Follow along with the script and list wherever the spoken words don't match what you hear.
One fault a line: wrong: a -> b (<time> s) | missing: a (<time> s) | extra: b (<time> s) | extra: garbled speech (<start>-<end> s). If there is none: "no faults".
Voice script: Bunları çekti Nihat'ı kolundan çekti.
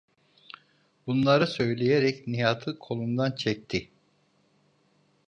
wrong: çekti -> söyleyerek (1.5 s)